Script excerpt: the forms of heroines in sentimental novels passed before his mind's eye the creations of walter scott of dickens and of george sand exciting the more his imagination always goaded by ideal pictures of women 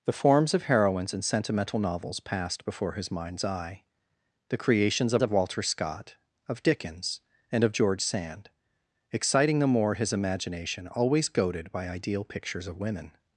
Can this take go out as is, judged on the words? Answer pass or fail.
fail